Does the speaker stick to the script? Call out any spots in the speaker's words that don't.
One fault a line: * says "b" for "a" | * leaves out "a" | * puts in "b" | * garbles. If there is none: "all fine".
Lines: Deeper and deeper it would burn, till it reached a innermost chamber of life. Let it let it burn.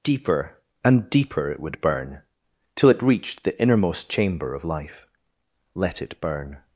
* says "the" for "a"
* leaves out "let it"